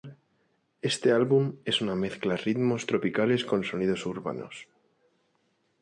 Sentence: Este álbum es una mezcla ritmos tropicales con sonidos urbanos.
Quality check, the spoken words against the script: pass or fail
pass